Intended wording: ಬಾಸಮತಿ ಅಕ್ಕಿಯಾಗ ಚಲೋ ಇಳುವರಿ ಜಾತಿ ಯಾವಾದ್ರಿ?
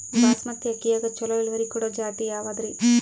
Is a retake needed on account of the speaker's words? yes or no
yes